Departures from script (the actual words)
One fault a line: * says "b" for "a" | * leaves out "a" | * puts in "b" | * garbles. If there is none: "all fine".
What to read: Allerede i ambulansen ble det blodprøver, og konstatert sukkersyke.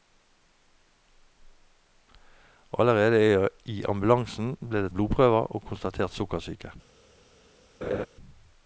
all fine